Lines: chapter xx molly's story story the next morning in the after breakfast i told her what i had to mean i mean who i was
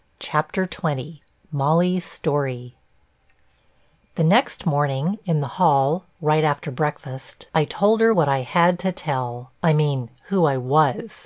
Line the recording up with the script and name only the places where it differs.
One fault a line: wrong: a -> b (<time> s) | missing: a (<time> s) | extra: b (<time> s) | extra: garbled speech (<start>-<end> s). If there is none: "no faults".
missing: story (2.7 s)
extra: hall right (5.6 s)
wrong: mean -> tell (8.9 s)